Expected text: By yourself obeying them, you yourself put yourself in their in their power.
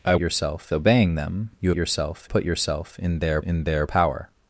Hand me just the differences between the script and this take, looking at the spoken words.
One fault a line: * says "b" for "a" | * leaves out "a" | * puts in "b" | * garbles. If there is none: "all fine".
all fine